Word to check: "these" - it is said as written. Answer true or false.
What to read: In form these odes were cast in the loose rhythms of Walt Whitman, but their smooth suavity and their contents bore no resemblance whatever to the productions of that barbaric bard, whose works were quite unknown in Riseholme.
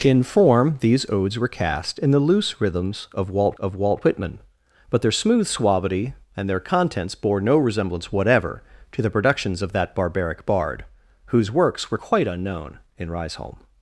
true